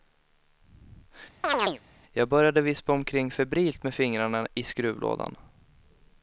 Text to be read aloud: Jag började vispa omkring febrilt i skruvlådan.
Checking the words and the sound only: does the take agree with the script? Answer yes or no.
no